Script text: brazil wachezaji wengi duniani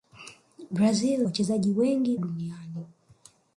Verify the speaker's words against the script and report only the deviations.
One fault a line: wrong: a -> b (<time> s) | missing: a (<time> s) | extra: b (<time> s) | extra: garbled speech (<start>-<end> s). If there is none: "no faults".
no faults